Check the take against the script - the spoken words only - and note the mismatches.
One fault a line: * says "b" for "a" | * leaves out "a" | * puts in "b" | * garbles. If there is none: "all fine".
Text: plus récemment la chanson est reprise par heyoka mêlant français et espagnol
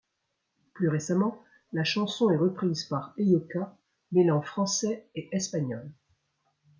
all fine